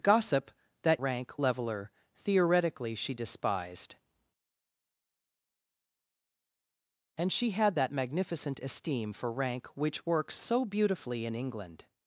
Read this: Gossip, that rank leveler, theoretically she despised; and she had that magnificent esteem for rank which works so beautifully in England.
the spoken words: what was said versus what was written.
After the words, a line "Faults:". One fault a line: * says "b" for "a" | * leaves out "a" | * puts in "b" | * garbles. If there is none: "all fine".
Gossip, that rank leveler, theoretically she despised; and she had that magnificent esteem for rank which works so beautifully in England.
Faults:
all fine